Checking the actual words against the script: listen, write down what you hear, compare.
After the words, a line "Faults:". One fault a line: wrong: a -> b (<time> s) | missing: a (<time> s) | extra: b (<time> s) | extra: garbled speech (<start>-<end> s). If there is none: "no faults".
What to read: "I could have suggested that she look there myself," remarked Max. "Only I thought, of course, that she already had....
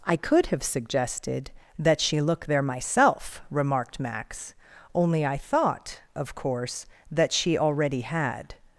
"I could have suggested that she look there myself," remarked Max. "Only I thought, of course, that she already had....
Faults:
no faults